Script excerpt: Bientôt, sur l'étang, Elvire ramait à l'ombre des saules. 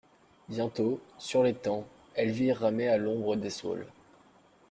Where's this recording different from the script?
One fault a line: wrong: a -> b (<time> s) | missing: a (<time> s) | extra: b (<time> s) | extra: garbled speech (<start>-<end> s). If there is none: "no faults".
no faults